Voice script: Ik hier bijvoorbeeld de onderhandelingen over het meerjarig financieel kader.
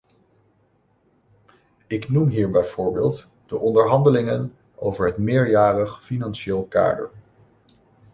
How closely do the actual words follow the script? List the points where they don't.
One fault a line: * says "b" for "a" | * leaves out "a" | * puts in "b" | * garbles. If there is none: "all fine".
* puts in "noem"